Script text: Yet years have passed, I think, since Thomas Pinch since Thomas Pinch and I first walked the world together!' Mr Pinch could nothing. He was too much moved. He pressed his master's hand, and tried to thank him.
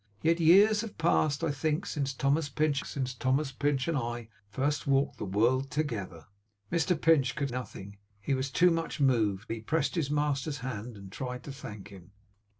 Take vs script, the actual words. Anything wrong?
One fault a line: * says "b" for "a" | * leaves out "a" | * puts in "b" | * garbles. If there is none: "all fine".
all fine